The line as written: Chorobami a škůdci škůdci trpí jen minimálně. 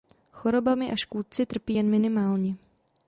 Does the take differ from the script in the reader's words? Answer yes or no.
yes